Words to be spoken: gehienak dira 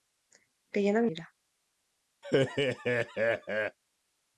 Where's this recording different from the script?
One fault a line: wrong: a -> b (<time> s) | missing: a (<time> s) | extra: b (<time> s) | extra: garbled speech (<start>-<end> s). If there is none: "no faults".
no faults